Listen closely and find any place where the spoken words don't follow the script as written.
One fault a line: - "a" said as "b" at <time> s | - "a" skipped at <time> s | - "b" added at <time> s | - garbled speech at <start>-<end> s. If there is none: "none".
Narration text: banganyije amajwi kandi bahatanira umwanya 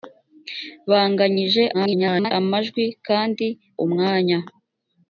- garbled speech at 1.7-2.3 s
- "bahatanira" skipped at 3.5 s